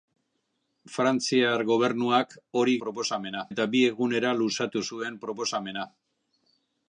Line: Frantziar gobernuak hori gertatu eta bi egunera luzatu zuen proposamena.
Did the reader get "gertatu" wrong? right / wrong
wrong